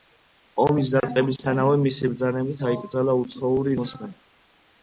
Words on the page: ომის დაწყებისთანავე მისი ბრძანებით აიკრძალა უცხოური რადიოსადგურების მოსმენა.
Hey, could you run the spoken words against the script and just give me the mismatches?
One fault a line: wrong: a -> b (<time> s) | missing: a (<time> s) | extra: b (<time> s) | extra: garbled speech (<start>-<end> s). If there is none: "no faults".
missing: რადიოსადგურების (3.8 s)